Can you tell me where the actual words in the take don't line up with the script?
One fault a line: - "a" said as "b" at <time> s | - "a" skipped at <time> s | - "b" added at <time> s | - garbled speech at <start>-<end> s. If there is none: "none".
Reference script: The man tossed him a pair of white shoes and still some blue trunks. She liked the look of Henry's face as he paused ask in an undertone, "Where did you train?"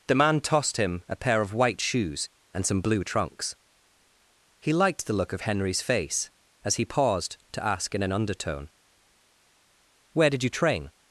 - "still" skipped at 2.6 s
- "She" said as "He" at 4.6 s
- "to" added at 7.5 s